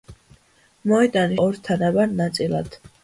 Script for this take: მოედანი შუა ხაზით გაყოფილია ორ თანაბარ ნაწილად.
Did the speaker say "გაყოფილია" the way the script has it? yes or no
no